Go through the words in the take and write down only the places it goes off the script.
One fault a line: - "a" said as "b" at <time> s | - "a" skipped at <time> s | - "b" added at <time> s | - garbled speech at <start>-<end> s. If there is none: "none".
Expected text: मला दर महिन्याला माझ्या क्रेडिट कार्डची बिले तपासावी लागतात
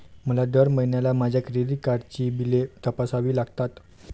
none